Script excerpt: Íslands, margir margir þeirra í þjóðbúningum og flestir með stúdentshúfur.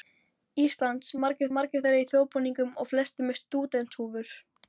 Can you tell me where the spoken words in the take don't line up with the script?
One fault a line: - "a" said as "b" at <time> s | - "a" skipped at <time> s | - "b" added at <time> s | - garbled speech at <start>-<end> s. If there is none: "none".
none